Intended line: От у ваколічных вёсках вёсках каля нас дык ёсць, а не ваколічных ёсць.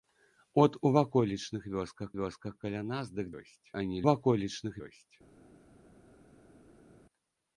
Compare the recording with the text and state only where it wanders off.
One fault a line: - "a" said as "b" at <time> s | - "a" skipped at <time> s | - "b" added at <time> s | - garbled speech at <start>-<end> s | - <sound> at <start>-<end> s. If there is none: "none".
none